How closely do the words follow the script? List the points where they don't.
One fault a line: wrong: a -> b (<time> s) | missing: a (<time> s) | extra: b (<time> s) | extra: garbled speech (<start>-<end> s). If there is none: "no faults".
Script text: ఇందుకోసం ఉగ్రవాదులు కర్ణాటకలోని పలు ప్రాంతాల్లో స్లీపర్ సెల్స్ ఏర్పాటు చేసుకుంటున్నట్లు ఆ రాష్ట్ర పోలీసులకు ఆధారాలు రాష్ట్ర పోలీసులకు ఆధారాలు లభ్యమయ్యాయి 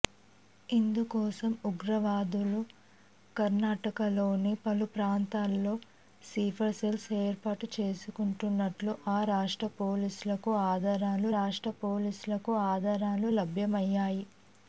no faults